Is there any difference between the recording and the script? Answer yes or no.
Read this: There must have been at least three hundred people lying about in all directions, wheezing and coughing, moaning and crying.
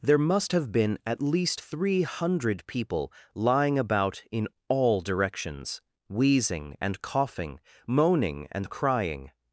no